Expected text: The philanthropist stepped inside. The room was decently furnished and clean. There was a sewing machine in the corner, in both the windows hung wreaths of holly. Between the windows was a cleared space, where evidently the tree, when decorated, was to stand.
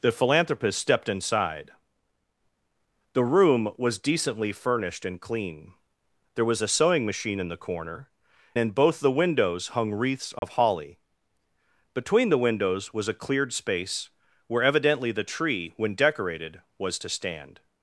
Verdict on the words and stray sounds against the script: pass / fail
fail